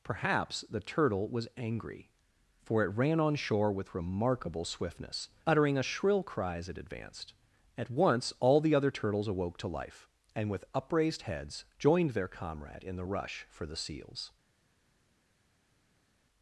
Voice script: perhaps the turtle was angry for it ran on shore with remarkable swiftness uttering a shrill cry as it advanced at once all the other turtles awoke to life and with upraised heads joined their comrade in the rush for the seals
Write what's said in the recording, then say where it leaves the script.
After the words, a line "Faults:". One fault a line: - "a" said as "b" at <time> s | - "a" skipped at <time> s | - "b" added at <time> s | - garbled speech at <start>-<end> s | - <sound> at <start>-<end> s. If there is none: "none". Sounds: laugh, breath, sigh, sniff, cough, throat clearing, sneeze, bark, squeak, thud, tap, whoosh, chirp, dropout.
perhaps the turtle was angry for it ran on shore with remarkable swiftness uttering a shrill cry as it advanced at once all the other turtles awoke to life and with upraised heads joined their comrade in the rush for the seals
Faults:
none